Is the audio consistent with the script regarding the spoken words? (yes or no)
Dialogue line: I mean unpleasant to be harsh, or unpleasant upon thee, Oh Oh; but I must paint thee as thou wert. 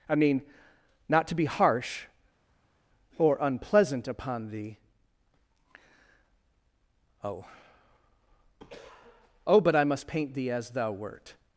no